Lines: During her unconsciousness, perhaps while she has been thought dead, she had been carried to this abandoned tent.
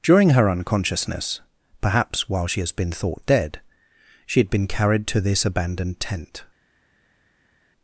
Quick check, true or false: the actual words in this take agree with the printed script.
true